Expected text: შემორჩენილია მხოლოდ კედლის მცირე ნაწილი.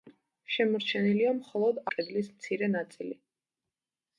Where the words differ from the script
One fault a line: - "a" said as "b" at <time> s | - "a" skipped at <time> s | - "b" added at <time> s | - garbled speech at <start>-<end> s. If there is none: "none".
none